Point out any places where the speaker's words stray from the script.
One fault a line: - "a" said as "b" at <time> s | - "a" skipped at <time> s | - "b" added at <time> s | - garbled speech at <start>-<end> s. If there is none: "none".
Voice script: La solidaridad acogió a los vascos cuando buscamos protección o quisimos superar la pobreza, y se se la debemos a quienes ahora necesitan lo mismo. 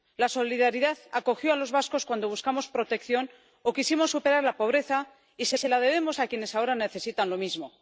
none